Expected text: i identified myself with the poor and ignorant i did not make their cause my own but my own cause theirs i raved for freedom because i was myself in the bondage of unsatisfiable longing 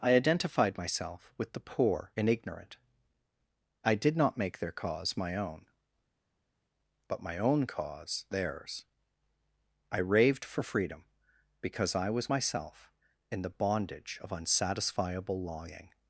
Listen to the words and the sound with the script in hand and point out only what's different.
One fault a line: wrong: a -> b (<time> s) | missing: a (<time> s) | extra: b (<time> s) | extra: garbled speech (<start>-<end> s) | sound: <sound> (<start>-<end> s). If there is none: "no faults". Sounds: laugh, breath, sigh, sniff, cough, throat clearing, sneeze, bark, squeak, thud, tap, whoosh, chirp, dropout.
no faults